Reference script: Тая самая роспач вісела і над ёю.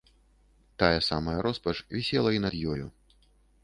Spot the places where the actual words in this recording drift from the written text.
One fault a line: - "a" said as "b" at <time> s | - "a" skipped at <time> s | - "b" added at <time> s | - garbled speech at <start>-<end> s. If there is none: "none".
none